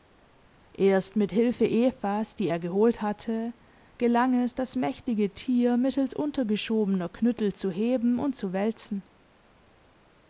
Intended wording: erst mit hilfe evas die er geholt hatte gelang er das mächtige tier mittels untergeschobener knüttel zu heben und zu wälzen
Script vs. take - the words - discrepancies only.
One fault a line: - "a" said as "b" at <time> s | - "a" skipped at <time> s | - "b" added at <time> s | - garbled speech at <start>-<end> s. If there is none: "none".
- "er" said as "es" at 4.4 s